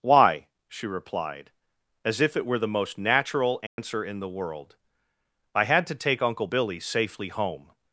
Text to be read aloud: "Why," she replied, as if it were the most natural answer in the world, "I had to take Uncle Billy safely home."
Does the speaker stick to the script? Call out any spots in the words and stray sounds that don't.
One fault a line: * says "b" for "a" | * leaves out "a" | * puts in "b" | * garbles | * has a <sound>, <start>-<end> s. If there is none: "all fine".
* has a dropout, 3.7-3.8 s